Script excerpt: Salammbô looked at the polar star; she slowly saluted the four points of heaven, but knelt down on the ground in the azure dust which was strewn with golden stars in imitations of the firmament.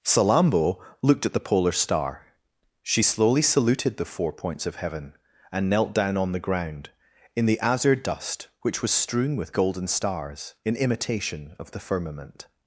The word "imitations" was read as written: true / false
false